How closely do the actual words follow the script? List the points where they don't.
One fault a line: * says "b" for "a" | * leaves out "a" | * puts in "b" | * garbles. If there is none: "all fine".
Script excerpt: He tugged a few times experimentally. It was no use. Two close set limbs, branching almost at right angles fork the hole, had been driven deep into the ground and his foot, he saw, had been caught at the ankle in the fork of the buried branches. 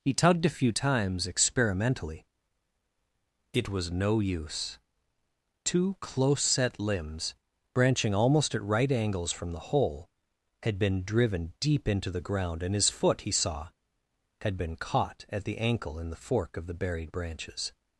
* says "from" for "fork"